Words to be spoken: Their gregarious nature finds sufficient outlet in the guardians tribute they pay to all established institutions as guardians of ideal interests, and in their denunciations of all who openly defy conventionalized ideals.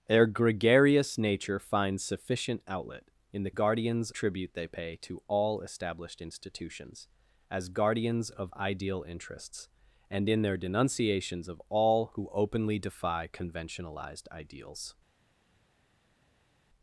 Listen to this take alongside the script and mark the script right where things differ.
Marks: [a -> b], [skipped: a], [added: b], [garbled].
Their gregarious nature finds sufficient outlet in the guardians tribute they pay to all established institutions as guardians of ideal interests, and in their denunciations of all who openly defy conventionalized ideals.